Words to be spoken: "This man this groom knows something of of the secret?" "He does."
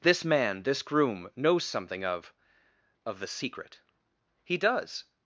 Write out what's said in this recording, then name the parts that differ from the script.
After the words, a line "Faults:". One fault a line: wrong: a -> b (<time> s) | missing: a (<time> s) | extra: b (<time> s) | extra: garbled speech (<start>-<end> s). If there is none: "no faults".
"This man this groom knows something of of the secret?" "He does."
Faults:
no faults